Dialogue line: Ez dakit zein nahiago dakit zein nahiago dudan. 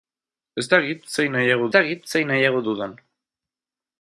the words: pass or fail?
pass